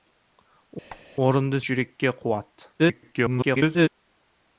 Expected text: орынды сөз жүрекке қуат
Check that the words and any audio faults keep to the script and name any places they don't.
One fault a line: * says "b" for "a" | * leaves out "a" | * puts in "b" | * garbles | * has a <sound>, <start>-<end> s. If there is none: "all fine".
* has a squeak, 0.9-1.0 s
* leaves out "сөз"
* garbles